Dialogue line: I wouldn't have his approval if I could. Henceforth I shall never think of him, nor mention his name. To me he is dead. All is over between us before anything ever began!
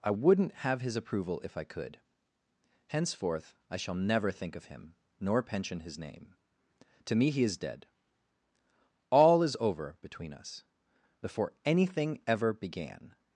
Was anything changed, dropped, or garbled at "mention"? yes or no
yes